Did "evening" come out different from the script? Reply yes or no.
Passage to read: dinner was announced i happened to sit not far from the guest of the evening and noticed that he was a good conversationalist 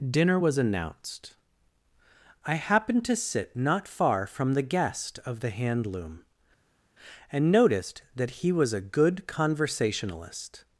yes